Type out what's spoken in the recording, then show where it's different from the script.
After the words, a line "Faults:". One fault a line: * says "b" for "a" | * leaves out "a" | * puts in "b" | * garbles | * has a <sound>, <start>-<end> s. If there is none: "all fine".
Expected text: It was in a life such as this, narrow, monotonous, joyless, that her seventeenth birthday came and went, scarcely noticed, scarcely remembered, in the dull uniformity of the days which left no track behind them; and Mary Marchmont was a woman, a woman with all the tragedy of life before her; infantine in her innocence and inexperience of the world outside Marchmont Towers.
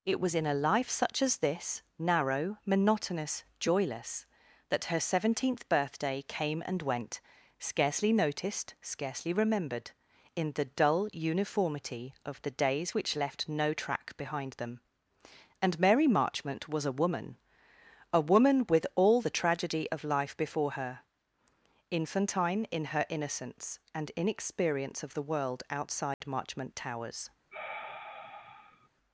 It was in a life such as this, narrow, monotonous, joyless, that her seventeenth birthday came and went, scarcely noticed, scarcely remembered, in the dull uniformity of the days which left no track behind them; and Mary Marchmont was a woman, a woman with all the tragedy of life before her; infantine in her innocence and inexperience of the world outside Marchmont Towers.
Faults:
* has a dropout, 26.1-26.2 s
* has a sigh, 27.5-28.9 s